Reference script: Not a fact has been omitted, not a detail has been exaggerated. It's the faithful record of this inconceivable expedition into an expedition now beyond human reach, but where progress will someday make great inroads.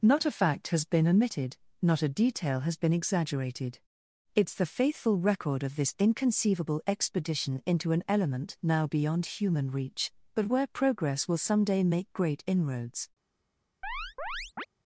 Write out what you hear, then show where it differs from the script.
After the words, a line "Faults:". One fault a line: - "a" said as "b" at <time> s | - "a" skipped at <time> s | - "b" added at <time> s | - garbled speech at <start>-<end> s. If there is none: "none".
Not a fact has been omitted, not a detail has been exaggerated. It's the faithful record of this inconceivable expedition into an element now beyond human reach, but where progress will someday make great inroads.
Faults:
- "expedition" said as "element" at 8.1 s